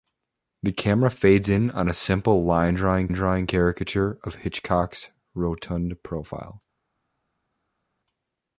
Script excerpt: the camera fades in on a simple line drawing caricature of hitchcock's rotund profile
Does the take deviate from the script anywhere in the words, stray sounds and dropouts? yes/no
yes